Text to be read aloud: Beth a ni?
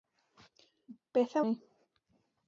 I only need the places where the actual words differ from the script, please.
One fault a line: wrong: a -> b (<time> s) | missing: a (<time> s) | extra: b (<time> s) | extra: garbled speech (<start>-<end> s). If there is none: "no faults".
no faults